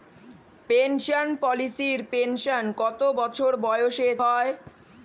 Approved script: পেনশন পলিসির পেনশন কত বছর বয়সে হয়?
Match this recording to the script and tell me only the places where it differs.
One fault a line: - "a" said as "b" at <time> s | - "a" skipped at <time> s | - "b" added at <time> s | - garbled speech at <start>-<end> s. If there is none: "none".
none